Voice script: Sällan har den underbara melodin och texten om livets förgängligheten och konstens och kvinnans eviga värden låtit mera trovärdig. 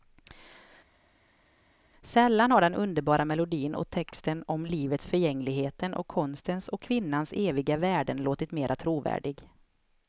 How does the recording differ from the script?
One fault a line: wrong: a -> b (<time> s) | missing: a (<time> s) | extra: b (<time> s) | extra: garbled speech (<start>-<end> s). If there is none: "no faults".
no faults